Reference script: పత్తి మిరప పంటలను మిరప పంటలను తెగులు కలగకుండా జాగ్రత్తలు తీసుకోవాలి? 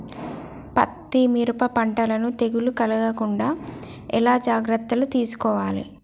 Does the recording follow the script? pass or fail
fail